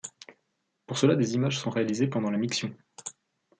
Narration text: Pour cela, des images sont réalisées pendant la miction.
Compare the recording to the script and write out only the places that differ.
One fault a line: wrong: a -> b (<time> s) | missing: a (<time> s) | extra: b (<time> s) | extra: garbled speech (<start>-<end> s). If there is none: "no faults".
no faults